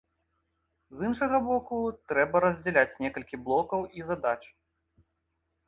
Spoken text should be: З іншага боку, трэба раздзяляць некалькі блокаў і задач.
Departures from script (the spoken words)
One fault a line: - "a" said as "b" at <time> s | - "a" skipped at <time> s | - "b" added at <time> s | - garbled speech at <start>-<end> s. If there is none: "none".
none